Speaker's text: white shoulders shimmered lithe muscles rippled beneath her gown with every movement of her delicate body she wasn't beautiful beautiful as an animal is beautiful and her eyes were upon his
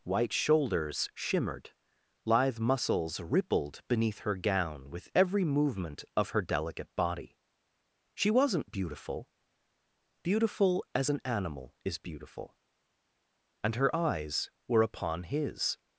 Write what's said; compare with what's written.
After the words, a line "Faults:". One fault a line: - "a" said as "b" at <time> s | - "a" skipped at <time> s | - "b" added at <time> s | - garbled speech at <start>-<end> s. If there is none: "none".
white shoulders shimmered lithe muscles rippled beneath her gown with every movement of her delicate body she wasn't beautiful beautiful as an animal is beautiful and her eyes were upon his
Faults:
none